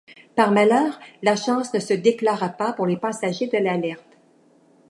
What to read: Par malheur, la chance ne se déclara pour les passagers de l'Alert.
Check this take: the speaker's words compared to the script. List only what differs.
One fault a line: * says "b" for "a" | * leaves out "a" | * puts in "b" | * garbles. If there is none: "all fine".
* puts in "pas"